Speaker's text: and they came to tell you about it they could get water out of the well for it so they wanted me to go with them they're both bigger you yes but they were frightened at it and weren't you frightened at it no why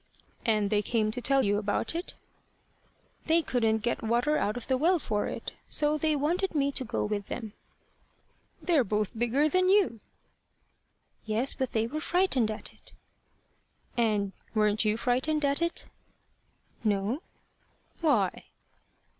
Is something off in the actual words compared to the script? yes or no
yes